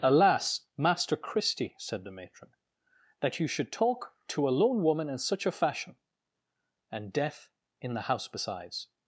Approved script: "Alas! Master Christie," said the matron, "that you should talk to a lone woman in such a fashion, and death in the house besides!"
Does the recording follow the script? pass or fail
pass